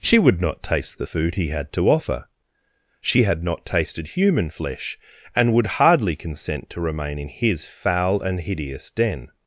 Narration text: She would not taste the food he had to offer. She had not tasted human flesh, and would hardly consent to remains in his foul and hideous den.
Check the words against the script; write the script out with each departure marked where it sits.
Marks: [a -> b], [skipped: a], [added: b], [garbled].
She would not taste the food he had to offer. She had not tasted human flesh, and would hardly consent to [remains -> remain] in his foul and hideous den.